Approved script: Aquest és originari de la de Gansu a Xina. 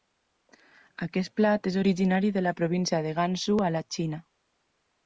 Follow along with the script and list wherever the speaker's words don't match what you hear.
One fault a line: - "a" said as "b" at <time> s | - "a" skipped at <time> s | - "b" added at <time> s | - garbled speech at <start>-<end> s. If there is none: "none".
- "plat" added at 1.4 s
- "província" added at 2.6 s
- "la" added at 3.8 s